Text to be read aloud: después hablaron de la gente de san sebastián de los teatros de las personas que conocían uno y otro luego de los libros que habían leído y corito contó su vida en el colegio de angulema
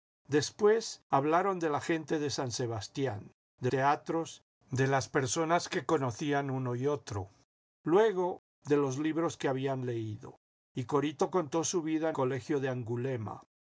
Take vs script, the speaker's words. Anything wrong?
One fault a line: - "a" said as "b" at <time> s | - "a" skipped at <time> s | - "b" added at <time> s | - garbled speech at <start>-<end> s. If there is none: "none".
- "los" skipped at 3.7 s
- "el" skipped at 12.2 s